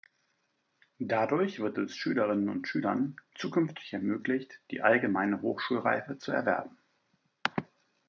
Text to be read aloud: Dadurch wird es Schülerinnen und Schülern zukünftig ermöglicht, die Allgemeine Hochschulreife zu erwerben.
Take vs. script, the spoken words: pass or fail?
pass